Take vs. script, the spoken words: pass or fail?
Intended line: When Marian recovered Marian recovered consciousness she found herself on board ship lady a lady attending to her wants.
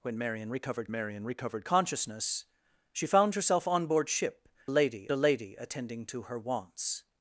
pass